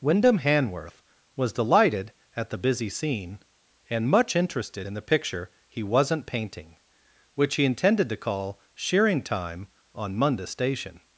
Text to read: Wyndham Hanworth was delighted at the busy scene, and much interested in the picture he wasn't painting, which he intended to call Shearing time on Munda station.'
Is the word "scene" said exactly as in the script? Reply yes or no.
yes